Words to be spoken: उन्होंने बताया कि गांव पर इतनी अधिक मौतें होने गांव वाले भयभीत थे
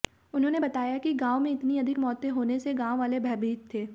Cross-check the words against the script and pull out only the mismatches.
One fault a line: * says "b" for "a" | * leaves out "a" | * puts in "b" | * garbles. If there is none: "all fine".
* says "में" for "पर"
* puts in "से"